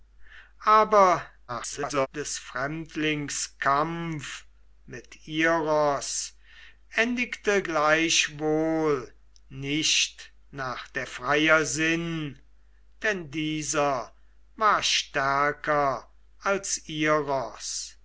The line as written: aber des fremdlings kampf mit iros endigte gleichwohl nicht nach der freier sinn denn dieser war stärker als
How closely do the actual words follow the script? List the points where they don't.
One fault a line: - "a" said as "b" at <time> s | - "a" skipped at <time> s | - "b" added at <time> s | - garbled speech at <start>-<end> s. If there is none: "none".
- garbled speech at 1.5-2.1 s